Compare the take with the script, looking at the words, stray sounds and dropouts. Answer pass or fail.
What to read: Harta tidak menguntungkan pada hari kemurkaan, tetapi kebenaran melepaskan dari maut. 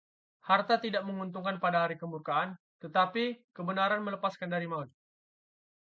pass